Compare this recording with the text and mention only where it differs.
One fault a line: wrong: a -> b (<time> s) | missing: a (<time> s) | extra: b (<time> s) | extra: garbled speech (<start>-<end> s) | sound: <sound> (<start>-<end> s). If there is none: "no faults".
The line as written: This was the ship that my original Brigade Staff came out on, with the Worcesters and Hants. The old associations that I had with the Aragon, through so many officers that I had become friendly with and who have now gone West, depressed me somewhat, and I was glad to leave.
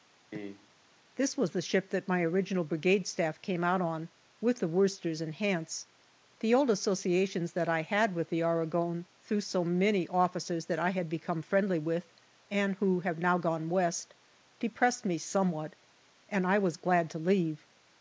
sound: cough (0.3-0.7 s)